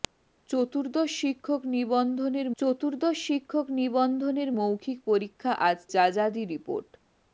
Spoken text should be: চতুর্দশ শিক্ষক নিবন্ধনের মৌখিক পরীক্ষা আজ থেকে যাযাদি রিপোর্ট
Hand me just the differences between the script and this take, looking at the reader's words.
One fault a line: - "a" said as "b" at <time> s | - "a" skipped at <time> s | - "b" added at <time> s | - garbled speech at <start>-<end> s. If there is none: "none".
- "চতুর্দশ শিক্ষক নিবন্ধনের" added at 2.6 s
- "থেকে" skipped at 5.8 s